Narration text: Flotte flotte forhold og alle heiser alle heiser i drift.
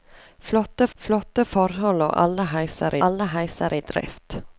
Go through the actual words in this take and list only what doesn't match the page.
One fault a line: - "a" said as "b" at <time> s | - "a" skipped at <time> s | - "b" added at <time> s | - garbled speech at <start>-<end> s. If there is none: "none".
none